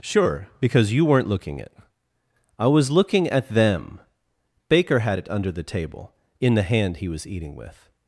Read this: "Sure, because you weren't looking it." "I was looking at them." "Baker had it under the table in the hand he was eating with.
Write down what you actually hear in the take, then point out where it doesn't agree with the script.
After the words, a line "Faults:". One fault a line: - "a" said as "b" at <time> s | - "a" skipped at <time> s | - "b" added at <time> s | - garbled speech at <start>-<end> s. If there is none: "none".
"Sure, because you weren't looking it." "I was looking at them." "Baker had it under the table in the hand he was eating with.
Faults:
none